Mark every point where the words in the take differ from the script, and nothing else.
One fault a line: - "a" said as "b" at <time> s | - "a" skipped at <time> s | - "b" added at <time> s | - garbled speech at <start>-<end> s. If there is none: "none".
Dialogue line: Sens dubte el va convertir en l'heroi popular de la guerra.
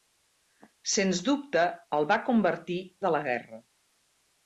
- "en l'heroi popular" skipped at 2.8 s